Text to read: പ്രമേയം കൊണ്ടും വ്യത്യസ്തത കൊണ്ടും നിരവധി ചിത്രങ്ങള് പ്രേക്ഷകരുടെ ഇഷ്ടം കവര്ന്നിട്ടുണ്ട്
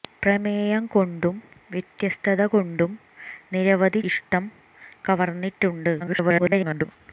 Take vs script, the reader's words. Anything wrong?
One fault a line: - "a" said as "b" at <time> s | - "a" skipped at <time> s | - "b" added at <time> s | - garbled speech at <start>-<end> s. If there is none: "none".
- "ചിത്രങ്ങള് പ്രേക്ഷകരുടെ" skipped at 4.0 s
- garbled speech at 6.0-6.9 s